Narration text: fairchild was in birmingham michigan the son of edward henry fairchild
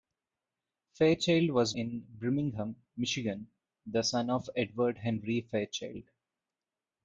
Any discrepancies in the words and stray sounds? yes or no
no